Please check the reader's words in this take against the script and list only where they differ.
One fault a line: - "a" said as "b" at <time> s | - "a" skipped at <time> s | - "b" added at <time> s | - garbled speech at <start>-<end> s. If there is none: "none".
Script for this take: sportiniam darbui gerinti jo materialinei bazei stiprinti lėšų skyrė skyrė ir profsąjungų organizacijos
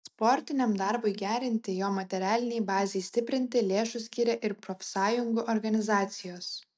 - "skyrė" skipped at 4.4 s